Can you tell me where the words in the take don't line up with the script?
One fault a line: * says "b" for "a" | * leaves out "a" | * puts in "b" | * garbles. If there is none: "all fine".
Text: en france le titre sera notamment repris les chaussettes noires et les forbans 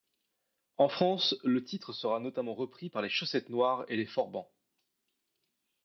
* puts in "par"